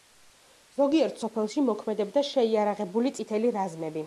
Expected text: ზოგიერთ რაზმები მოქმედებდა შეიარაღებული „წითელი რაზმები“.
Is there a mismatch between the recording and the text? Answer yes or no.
yes